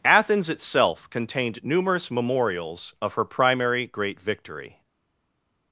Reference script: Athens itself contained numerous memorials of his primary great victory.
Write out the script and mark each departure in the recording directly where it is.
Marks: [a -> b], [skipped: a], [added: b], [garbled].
Athens itself contained numerous memorials of [his -> her] primary great victory.